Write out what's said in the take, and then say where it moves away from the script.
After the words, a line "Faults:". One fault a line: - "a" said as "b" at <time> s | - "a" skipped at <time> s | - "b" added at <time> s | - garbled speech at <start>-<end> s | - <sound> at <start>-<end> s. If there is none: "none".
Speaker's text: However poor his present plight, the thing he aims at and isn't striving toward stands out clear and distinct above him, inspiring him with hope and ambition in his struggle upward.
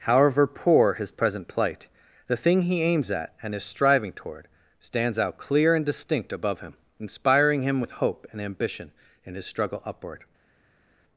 However poor his present plight, the thing he aims at and is striving toward stands out clear and distinct above him, inspiring him with hope and ambition in his struggle upward.
Faults:
- "isn't" said as "is" at 3.5 s